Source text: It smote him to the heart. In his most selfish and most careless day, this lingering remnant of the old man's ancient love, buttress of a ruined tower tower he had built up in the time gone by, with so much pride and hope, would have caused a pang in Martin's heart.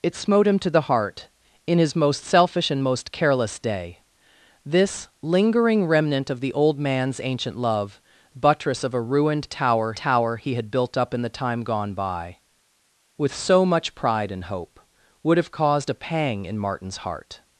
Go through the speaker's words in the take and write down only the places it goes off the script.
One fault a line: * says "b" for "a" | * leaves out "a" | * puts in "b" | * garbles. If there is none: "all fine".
all fine